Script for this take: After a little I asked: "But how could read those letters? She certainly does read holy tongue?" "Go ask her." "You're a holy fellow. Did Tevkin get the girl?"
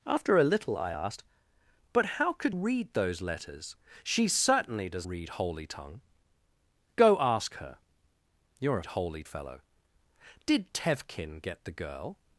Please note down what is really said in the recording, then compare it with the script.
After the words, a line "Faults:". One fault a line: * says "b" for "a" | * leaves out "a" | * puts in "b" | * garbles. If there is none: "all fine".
After a little I asked: "But how could read those letters? She certainly does read holy tongue?" "Go ask her." "You're a holy fellow. Did Tevkin get the girl?"
Faults:
all fine